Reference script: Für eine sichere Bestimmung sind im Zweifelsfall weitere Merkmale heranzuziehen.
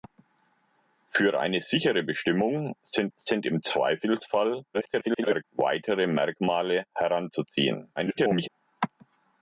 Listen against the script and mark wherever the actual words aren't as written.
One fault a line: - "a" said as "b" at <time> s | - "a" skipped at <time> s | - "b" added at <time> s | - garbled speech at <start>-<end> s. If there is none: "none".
- "sind" added at 3.2 s
- garbled speech at 4.7-5.4 s
- garbled speech at 8.0-8.5 s